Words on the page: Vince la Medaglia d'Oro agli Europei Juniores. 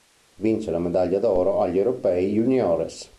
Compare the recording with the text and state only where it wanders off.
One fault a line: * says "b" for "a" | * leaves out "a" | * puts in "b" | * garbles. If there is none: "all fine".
all fine